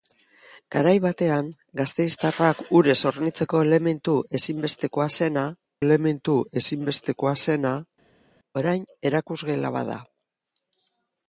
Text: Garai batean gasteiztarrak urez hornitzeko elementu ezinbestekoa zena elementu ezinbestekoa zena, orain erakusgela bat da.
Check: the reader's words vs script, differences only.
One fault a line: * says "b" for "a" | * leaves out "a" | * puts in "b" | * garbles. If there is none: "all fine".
all fine